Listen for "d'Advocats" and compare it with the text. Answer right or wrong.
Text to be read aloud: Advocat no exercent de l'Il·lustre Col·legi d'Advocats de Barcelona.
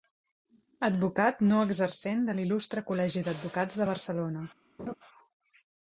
right